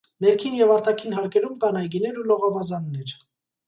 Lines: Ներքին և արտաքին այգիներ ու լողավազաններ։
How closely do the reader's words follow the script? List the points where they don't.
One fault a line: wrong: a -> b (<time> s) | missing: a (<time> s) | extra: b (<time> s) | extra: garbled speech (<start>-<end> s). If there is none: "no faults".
extra: հարկերում կան (1.2 s)